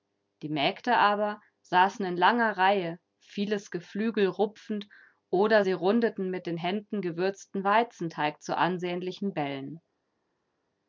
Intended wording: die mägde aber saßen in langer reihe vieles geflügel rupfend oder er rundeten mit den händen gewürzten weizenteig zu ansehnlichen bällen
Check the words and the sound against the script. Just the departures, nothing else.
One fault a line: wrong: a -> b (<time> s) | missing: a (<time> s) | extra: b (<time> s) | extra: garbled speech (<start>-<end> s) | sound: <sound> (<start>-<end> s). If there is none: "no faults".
wrong: er -> sie (5.6 s)